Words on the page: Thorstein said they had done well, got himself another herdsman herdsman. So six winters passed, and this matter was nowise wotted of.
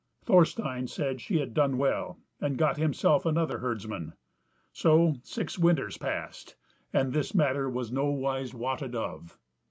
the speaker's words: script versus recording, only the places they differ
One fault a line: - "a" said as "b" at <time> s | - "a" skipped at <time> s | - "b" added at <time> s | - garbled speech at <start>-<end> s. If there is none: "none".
- "they" said as "she" at 1.2 s
- "and" added at 2.4 s
- "herdsman" skipped at 4.1 s